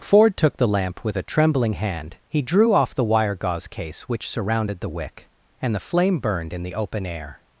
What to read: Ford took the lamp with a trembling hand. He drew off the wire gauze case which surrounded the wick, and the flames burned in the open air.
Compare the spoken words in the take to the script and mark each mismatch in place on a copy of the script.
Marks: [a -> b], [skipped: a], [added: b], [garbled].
Ford took the lamp with a trembling hand. He drew off the wire gauze case which surrounded the wick, and the [flames -> flame] burned in the open air.